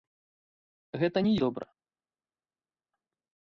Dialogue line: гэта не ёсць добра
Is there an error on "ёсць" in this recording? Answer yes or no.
yes